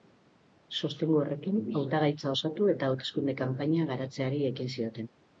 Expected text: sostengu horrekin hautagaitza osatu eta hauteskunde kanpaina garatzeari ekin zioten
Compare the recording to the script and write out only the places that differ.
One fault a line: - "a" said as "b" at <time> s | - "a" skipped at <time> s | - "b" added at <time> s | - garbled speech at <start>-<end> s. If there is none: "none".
none